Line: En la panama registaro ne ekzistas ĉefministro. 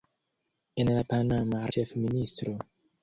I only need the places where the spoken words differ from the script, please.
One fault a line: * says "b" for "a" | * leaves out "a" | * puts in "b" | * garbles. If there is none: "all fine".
* leaves out "registaro ne ekzistas"